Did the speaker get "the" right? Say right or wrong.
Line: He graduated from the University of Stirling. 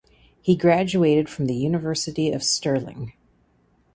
right